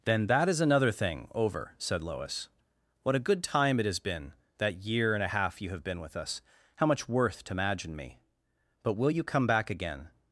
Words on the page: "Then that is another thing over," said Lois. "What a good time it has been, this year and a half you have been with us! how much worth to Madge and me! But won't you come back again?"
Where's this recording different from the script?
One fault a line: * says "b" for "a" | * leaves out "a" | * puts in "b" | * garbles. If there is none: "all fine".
* says "that" for "this"
* says "will" for "won't"